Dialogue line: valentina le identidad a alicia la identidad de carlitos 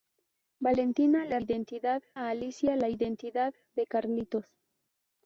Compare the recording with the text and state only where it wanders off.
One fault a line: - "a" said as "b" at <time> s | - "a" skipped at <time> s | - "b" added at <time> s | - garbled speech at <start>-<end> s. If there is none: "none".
none